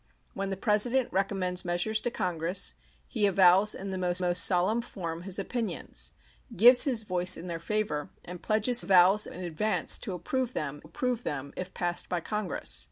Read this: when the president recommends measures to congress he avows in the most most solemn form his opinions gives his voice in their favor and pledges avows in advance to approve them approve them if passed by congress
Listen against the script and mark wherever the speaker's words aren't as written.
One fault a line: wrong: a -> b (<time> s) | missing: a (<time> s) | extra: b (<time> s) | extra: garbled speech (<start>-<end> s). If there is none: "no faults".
no faults